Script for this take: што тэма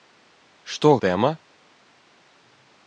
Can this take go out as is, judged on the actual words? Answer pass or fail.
pass